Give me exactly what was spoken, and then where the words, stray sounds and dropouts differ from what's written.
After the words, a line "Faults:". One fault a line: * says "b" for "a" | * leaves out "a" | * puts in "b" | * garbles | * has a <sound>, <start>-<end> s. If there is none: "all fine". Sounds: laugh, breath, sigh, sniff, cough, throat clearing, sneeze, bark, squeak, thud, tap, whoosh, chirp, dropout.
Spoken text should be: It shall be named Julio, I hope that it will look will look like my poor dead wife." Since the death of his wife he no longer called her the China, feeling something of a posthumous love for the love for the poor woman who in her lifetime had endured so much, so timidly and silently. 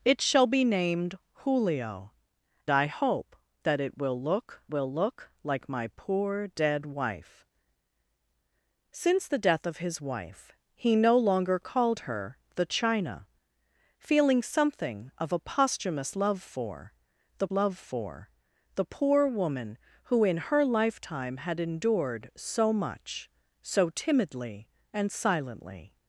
It shall be named Julio, I hope that it will look will look like my poor dead wife." Since the death of his wife he no longer called her the China, feeling something of a posthumous love for the love for the poor woman who in her lifetime had endured so much, so timidly and silently.
Faults:
all fine